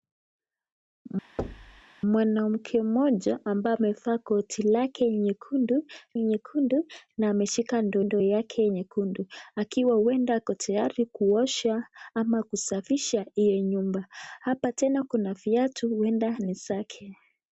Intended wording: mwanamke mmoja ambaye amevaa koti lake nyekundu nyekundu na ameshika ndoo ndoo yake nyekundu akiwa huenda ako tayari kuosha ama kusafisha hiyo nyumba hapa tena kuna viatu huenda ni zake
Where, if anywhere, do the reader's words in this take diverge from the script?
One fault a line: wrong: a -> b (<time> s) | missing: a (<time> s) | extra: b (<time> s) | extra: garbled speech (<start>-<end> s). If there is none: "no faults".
no faults